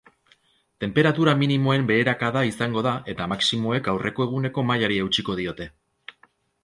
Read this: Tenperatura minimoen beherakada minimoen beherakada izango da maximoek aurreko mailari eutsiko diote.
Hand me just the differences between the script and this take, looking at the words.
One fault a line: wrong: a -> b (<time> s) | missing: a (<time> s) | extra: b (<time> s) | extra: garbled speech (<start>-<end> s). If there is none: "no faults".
missing: minimoen beherakada (2.4 s)
extra: eta (3.1 s)
extra: eguneko (4.3 s)